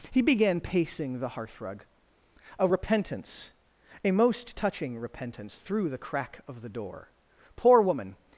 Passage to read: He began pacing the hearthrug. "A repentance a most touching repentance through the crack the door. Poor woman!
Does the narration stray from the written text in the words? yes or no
yes